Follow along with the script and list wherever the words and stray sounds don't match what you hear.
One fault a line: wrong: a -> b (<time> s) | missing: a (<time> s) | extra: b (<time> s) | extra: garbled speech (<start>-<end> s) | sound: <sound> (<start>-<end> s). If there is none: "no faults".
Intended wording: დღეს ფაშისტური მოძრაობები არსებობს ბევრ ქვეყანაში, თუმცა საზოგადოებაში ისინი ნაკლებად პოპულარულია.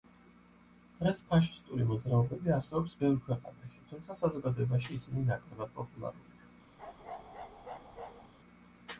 sound: bark (6.8-8.3 s)